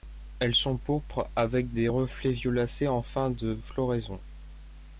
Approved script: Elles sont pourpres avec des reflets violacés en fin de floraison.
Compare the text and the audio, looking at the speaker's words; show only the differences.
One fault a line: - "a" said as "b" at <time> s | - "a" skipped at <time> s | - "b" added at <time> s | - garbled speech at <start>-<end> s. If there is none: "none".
none